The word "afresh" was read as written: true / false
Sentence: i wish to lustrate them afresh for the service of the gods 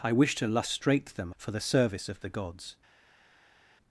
false